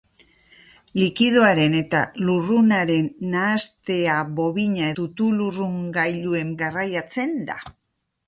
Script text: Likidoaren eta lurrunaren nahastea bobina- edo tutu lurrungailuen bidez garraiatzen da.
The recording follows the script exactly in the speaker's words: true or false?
false